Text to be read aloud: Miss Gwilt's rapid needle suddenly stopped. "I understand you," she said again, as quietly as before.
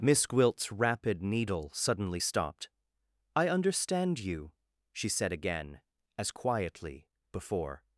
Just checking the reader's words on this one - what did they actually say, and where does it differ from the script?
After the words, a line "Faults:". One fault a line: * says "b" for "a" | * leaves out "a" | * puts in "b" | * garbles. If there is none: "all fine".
Miss Gwilt's rapid needle suddenly stopped. "I understand you," she said again, as quietly before.
Faults:
* leaves out "as"